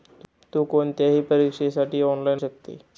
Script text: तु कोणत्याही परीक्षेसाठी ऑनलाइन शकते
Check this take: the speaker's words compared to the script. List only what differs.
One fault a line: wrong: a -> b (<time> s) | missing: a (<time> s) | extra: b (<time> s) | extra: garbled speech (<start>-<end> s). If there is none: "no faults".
no faults